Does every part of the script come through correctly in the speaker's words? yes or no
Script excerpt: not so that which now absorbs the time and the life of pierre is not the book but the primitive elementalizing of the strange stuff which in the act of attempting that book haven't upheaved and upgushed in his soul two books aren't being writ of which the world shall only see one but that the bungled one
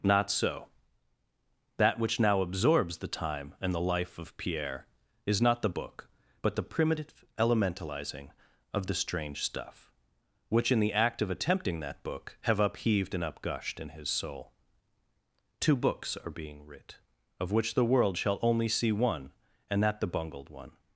no